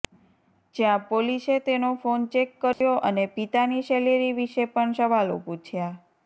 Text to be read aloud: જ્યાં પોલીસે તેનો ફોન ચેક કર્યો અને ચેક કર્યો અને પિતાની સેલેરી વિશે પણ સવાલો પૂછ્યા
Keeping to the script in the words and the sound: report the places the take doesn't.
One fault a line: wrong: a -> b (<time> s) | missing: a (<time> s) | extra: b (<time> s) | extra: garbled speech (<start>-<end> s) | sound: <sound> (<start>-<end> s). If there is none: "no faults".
sound: dropout (2.7-2.8 s)
missing: ચેક કર્યો અને (3.2 s)